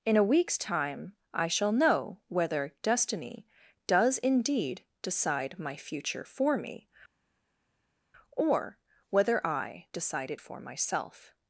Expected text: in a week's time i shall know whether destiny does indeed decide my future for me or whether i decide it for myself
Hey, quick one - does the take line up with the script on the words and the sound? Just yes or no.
yes